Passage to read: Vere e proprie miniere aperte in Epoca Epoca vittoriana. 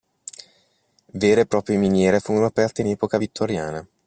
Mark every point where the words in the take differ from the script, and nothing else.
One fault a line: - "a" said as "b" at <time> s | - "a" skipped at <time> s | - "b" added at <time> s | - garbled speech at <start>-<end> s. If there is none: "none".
- "furono" added at 2.2 s
- "Epoca" skipped at 3.2 s